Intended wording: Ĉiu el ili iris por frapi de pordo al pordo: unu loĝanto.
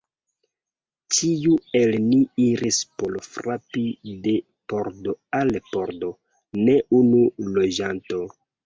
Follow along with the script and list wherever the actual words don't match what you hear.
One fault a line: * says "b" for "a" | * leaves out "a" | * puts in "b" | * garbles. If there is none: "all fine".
* says "ni" for "ili"
* puts in "ne"